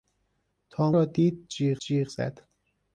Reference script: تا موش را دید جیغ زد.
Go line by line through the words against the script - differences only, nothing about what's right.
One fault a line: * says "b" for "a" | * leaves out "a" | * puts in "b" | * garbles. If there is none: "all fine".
* leaves out "موش"
* puts in "جیغ"